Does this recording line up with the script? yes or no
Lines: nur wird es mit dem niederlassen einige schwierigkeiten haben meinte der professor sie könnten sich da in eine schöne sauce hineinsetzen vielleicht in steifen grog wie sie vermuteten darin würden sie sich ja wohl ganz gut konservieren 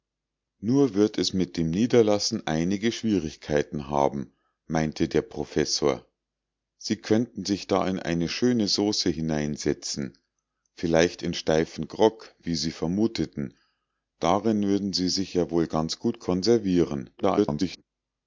no